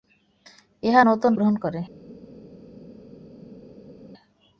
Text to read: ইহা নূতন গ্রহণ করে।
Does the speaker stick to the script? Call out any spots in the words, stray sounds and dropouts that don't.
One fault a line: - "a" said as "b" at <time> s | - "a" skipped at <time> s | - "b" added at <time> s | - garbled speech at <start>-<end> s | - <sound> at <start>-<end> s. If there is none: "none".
none